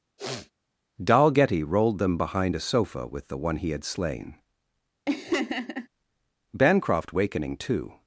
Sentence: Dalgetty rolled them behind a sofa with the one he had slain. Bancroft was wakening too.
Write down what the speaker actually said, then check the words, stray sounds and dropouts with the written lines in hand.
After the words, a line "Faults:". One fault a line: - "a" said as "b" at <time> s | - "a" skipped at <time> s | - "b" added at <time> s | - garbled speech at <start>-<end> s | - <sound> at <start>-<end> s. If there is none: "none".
Dalgetty rolled them behind a sofa with the one he had slain. Bancroft wakening too.
Faults:
- sniff at 0.2-0.5 s
- laugh at 5.1-5.9 s
- "was" skipped at 7.1 s